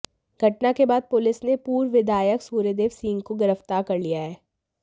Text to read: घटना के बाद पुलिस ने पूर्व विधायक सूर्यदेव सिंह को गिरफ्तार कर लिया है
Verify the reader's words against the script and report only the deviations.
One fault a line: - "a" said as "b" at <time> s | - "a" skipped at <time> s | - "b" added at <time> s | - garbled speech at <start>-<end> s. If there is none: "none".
none